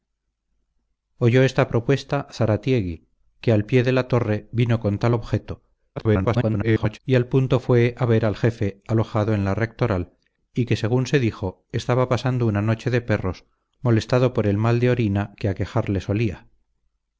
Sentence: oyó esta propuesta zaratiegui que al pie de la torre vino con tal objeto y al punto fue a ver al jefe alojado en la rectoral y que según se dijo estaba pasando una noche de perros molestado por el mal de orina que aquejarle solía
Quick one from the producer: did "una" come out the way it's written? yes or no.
yes